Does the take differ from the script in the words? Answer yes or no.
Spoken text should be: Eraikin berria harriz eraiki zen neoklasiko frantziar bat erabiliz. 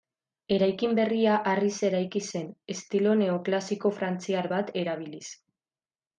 yes